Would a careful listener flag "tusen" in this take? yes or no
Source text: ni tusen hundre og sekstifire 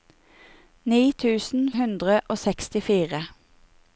no